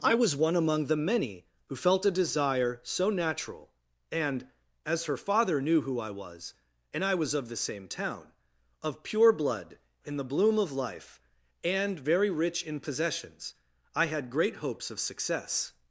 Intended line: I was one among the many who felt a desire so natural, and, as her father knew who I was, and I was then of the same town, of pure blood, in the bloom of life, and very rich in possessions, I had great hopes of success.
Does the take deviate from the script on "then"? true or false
true